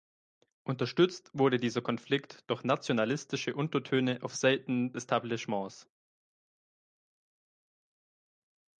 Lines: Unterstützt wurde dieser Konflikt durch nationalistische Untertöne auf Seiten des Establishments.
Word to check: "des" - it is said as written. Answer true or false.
false